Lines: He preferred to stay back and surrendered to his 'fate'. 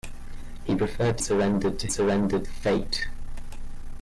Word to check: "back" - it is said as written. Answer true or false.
false